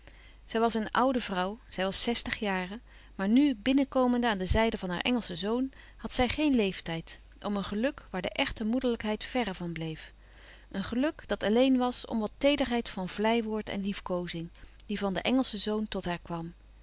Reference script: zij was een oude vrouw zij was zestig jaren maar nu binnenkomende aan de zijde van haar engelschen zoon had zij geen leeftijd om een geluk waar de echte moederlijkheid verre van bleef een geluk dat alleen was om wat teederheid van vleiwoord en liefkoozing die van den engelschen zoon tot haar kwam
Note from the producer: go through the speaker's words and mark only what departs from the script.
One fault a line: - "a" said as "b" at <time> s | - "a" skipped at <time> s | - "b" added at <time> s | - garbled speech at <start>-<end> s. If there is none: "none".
none